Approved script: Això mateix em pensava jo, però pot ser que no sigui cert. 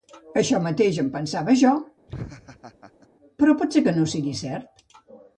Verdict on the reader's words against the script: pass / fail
pass